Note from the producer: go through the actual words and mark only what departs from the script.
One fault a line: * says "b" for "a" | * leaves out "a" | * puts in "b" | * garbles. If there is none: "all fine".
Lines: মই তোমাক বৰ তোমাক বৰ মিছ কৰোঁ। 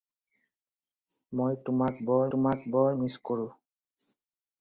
all fine